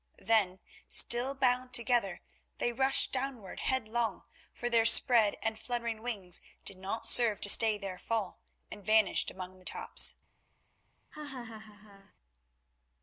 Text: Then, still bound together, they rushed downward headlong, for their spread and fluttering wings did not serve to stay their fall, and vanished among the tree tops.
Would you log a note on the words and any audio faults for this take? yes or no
yes